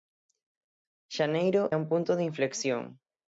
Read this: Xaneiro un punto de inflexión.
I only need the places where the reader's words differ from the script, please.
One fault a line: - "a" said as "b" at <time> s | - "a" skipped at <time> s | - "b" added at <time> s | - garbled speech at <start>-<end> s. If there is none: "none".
none